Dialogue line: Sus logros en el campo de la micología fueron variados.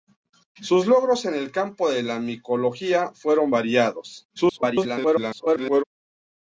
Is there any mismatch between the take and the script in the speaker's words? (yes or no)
yes